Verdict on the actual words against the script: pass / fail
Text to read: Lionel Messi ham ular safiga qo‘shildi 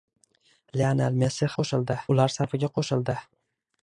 fail